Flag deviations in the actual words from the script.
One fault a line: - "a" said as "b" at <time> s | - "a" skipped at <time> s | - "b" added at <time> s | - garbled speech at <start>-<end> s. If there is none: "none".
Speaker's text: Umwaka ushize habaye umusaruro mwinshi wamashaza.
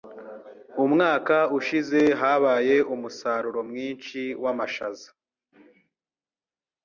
none